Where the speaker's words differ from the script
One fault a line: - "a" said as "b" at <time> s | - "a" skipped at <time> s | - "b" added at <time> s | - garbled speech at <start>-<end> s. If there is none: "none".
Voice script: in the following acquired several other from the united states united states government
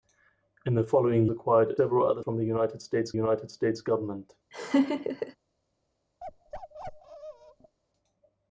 none